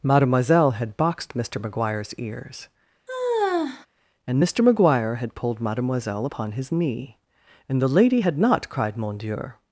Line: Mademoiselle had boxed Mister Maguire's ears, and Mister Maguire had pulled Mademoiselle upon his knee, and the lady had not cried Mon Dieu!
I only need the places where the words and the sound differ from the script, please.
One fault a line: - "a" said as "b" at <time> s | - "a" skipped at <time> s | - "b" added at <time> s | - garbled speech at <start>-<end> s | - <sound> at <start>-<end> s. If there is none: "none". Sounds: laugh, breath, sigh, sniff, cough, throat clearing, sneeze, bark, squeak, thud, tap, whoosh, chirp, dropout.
- sigh at 3.1-3.9 s